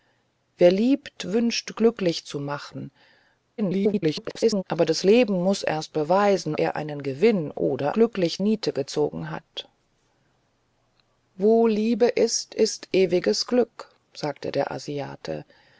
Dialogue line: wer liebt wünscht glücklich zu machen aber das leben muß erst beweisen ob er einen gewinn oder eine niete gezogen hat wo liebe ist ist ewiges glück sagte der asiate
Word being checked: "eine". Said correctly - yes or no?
no